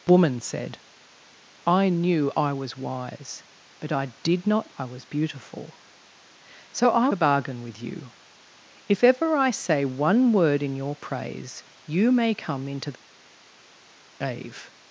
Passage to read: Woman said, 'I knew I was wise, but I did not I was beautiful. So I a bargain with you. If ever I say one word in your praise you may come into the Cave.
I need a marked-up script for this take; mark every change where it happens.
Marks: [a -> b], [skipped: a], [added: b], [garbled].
Woman said, 'I knew I was wise, but I did not I was beautiful. So I a bargain with you. If ever I say one word in your praise you may come into the Cave.